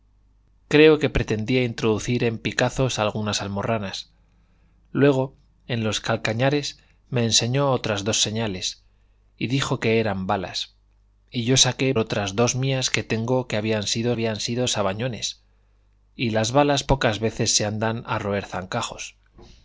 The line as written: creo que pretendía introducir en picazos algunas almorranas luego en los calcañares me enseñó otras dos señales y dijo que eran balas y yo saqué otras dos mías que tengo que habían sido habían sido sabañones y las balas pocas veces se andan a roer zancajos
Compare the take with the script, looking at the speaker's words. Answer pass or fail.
pass